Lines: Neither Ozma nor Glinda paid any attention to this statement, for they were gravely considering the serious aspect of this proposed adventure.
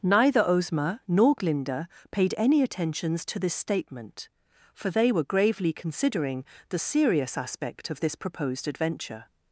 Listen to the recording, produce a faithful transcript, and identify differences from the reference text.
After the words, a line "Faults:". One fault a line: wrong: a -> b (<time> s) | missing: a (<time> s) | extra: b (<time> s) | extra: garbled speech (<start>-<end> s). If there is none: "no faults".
Neither Ozma nor Glinda paid any attentions to this statement, for they were gravely considering the serious aspect of this proposed adventure.
Faults:
wrong: attention -> attentions (2.6 s)